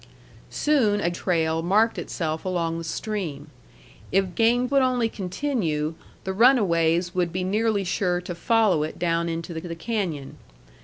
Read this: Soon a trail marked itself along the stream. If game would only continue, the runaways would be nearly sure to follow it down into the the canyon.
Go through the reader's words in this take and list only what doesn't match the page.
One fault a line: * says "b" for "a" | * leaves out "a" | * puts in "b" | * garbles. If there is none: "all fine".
all fine